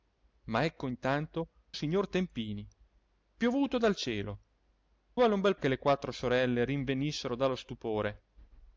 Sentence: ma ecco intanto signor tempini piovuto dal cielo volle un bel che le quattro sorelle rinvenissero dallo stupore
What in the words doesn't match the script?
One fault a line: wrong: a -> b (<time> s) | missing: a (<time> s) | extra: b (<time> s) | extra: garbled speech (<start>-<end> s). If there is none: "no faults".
no faults